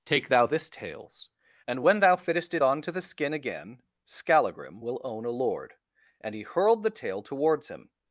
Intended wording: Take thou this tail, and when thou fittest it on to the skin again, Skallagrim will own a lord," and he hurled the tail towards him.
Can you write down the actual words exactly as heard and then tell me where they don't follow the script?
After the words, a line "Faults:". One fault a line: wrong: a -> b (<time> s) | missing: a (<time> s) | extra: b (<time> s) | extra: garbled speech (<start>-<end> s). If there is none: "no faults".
Take thou this tails, and when thou fittest it on to the skin again, Skallagrim will own a lord," and he hurled the tail towards him.
Faults:
wrong: tail -> tails (0.7 s)